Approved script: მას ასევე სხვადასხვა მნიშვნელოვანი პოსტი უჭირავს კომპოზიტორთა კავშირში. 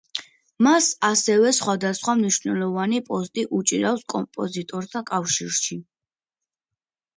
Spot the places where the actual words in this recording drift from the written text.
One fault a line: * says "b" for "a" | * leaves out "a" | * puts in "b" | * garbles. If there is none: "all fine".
all fine